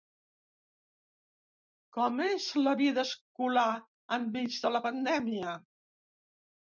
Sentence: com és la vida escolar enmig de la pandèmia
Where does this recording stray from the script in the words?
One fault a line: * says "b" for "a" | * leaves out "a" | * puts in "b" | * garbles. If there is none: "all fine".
all fine